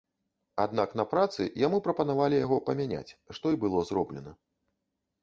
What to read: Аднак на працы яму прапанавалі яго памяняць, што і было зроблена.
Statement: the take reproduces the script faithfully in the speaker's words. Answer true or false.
true